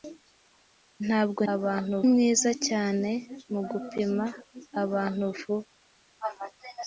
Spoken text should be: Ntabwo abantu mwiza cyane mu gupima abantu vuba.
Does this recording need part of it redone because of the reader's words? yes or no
no